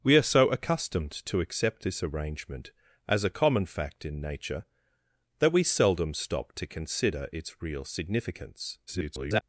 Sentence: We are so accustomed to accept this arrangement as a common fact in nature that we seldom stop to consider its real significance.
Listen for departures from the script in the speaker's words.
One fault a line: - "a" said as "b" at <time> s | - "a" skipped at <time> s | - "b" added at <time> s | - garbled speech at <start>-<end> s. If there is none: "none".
- garbled speech at 8.9-9.4 s